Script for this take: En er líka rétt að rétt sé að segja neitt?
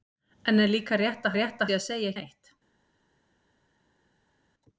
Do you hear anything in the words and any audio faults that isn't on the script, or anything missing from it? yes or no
no